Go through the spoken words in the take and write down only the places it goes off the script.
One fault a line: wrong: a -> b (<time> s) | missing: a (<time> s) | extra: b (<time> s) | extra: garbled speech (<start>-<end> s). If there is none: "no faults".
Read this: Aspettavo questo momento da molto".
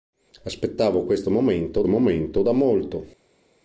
extra: momento (1.9 s)